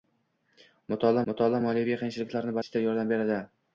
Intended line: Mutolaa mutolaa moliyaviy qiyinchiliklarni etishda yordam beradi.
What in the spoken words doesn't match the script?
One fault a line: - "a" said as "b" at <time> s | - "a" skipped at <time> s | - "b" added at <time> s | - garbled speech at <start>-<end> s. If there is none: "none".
none